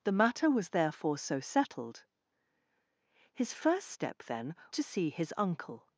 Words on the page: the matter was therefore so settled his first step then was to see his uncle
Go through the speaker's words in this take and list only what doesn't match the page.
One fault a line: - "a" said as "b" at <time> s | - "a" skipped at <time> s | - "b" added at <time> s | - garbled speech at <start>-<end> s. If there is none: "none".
- "was" skipped at 4.5 s